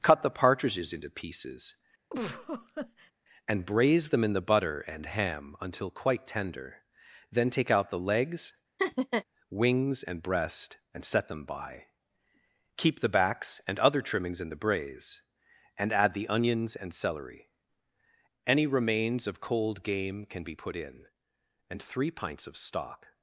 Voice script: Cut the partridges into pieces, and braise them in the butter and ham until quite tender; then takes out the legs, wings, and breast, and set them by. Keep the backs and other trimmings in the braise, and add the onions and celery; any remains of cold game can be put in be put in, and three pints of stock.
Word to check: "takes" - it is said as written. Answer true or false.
false